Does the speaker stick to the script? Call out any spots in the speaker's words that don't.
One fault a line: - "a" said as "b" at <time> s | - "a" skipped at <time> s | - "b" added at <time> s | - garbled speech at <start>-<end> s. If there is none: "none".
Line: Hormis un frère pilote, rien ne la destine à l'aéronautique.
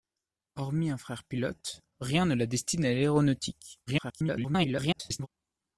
- garbled speech at 3.9-5.3 s